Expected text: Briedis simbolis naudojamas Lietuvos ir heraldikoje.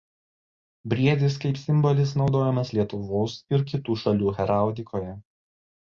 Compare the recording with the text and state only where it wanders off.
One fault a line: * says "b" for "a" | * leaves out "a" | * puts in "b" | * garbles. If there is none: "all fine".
* puts in "kaip"
* puts in "kitų šalių"